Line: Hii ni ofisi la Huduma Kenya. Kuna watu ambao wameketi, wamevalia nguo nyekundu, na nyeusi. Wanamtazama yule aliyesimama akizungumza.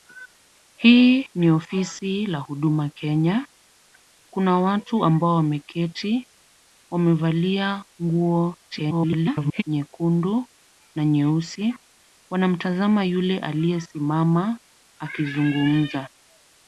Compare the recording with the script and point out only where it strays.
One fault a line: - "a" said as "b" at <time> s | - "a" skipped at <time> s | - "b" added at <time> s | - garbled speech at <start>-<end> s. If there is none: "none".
- garbled speech at 8.7-9.6 s